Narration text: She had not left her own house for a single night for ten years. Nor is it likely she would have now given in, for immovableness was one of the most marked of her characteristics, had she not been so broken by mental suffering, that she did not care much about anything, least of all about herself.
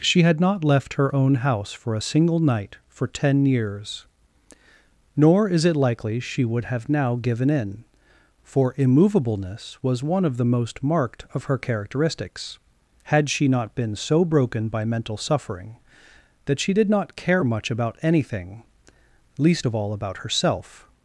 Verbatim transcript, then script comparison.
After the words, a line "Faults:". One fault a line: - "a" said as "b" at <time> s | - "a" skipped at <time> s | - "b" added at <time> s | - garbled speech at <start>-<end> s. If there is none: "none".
She had not left her own house for a single night for ten years. Nor is it likely she would have now given in, for immovableness was one of the most marked of her characteristics, had she not been so broken by mental suffering, that she did not care much about anything, least of all about herself.
Faults:
none